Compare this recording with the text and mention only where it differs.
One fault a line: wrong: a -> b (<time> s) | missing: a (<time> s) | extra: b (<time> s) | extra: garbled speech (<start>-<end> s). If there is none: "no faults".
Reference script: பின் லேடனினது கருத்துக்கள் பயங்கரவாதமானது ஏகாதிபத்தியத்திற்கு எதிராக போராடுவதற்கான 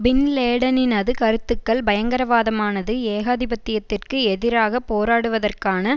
no faults